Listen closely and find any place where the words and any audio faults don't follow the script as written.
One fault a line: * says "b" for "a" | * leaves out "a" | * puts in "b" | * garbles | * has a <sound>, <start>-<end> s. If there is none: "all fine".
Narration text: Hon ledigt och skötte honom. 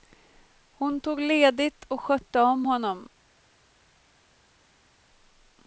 * puts in "tog"
* puts in "om"